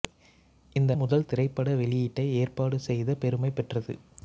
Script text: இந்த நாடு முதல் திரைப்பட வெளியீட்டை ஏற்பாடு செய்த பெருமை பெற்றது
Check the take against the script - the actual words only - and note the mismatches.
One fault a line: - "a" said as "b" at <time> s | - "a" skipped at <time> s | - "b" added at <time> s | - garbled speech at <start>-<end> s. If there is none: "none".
- "நாடு" skipped at 0.9 s